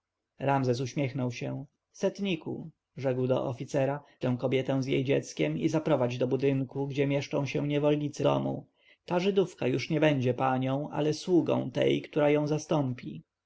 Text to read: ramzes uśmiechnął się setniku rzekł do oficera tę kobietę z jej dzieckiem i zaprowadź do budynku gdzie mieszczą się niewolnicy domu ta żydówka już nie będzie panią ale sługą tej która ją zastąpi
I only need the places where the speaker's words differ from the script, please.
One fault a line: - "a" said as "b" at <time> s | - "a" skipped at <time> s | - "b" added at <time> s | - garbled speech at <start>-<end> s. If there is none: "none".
none